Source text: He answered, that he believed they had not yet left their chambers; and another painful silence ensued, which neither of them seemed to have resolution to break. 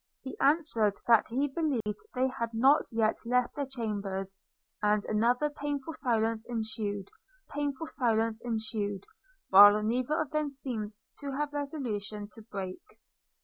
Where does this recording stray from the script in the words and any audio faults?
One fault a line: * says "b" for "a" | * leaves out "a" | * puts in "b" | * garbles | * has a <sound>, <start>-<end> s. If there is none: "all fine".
* has a dropout, 1.8-1.9 s
* puts in "painful silence ensued"